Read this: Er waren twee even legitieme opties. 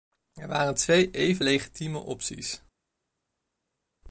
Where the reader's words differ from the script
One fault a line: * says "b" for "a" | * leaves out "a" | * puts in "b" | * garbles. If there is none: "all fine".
all fine